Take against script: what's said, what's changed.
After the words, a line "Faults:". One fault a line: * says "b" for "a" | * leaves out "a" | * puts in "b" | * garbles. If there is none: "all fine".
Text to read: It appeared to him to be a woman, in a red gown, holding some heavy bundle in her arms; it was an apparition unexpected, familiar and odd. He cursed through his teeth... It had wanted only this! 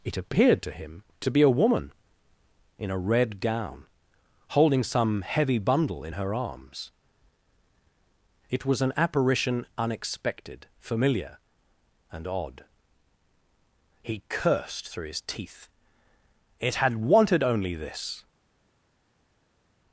It appeared to him to be a woman, in a red gown, holding some heavy bundle in her arms; it was an apparition unexpected, familiar and odd. He cursed through his teeth... It had wanted only this!
Faults:
all fine